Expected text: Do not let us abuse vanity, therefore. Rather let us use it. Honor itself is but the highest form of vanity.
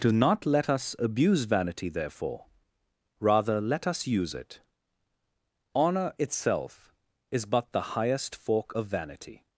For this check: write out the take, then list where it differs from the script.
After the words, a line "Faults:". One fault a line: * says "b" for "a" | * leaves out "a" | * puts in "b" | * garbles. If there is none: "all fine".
Do not let us abuse vanity, therefore. Rather let us use it. Honor itself is but the highest fork of vanity.
Faults:
* says "fork" for "form"